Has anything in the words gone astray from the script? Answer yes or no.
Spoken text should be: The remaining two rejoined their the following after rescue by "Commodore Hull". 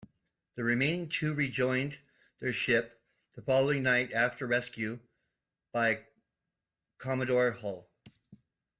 yes